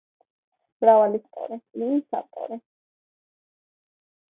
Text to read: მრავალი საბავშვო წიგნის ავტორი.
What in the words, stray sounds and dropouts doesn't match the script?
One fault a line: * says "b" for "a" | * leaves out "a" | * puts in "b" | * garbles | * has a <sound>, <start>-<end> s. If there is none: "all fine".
* says "ავტორი" for "საბავშვო"